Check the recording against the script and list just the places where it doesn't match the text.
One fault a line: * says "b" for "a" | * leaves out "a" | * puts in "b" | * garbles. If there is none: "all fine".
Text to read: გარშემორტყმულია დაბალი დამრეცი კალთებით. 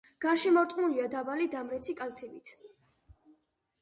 all fine